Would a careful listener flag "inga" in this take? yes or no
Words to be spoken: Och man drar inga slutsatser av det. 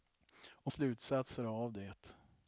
yes